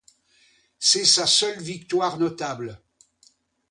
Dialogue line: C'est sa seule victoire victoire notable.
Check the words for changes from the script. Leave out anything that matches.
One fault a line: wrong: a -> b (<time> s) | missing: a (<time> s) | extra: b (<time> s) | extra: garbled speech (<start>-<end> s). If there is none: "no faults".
missing: victoire (2.2 s)